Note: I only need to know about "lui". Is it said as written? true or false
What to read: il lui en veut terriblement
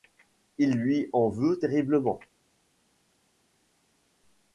true